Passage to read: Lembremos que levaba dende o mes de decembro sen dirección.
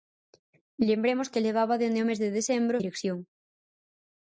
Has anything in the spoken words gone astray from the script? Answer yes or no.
yes